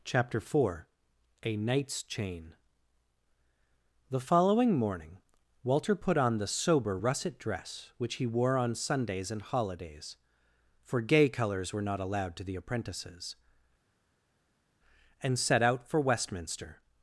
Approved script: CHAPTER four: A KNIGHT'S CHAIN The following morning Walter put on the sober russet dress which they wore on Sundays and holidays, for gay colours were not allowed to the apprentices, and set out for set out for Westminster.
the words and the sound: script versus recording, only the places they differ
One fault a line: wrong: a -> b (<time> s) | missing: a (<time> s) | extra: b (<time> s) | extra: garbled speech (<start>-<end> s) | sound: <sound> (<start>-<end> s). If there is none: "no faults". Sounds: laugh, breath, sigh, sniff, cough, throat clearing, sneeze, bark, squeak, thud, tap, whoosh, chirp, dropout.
wrong: they -> he (8.1 s)
missing: set out for (16.0 s)